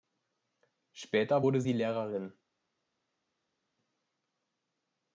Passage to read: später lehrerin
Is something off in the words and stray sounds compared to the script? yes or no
yes